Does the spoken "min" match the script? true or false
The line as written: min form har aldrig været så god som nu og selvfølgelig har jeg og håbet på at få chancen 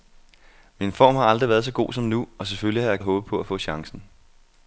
true